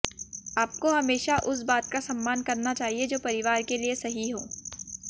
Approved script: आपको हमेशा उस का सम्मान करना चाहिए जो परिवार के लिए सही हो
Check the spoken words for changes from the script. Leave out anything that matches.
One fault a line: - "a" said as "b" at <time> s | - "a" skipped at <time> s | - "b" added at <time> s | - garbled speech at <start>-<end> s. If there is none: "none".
- "बात" added at 1.6 s